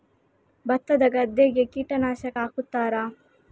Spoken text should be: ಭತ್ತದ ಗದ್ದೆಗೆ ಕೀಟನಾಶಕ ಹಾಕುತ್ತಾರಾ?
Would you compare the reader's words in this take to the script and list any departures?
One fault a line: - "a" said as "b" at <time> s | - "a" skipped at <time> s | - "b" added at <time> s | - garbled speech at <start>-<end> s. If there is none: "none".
none